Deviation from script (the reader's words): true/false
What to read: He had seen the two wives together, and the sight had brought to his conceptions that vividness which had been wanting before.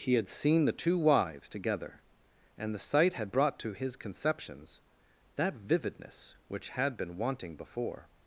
false